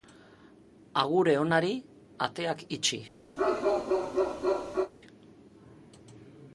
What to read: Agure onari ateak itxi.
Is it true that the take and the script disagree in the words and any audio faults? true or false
true